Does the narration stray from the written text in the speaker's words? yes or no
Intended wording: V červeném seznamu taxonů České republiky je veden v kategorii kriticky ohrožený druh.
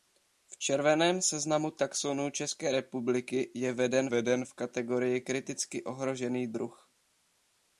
yes